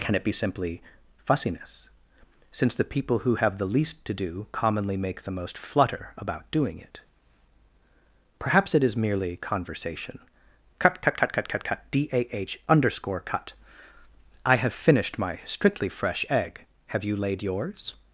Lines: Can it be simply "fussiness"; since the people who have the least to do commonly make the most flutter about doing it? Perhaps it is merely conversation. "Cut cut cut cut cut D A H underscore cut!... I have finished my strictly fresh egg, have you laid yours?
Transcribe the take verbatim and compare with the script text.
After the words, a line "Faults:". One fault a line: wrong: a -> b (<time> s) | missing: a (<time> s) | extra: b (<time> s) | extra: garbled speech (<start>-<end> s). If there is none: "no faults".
Can it be simply "fussiness"; since the people who have the least to do commonly make the most flutter about doing it? Perhaps it is merely conversation. "Cut cut cut cut cut cut D A H underscore cut!... I have finished my strictly fresh egg, have you laid yours?
Faults:
extra: cut (11.6 s)